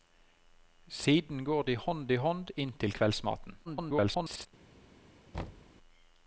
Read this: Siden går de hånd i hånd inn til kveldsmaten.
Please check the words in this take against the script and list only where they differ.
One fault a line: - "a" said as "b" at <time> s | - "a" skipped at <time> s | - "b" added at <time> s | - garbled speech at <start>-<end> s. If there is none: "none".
- garbled speech at 3.6-4.5 s